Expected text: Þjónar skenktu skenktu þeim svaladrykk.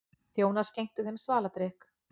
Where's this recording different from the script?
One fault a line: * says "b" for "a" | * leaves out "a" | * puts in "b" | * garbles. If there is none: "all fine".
* leaves out "skenktu"